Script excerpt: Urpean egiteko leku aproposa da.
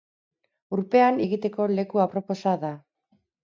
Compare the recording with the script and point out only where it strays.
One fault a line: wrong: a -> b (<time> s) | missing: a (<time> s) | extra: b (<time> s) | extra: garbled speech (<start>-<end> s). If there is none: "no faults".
no faults